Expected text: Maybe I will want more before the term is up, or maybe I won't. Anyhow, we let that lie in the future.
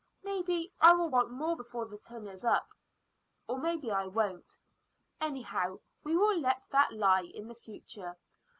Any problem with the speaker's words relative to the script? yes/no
yes